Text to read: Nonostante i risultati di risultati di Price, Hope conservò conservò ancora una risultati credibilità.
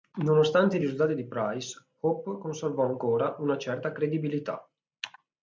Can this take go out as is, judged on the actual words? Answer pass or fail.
fail